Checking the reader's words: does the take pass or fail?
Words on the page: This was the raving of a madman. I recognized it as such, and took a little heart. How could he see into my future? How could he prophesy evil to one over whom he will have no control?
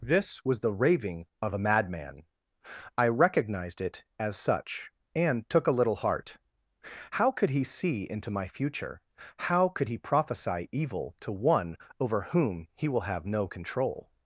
pass